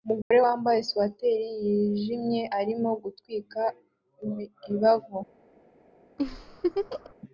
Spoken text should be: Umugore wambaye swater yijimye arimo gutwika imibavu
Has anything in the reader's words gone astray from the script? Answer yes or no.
no